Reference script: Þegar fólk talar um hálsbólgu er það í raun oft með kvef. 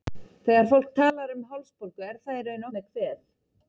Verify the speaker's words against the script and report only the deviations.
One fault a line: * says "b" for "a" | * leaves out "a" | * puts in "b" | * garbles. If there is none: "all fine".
* leaves out "oft"